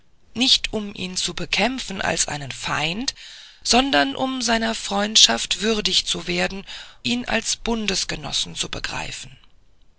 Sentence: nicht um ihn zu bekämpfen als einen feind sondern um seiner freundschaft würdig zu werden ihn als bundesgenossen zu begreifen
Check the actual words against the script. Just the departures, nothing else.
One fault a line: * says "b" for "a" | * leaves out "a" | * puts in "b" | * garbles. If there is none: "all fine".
all fine